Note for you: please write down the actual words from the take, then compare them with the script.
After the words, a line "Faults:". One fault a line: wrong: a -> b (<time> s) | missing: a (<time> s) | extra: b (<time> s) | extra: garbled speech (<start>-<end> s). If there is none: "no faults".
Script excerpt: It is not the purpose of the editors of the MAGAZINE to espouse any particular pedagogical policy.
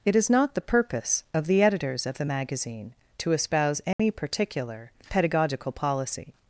It is not the purpose of the editors of the MAGAZINE to espouse any particular pedagogical policy.
Faults:
no faults